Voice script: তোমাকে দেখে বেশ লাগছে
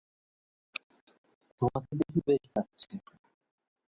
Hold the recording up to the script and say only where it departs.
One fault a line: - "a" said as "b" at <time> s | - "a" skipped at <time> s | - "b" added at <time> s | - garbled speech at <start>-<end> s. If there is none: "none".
none